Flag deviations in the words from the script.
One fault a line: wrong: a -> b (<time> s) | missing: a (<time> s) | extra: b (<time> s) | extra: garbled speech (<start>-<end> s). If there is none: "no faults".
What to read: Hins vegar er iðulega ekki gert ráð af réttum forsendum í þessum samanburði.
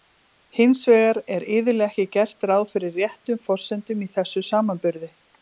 wrong: af -> fyrir (2.7 s)